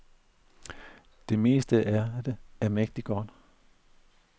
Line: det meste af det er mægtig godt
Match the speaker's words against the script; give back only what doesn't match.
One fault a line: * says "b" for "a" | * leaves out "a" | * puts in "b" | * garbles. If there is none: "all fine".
all fine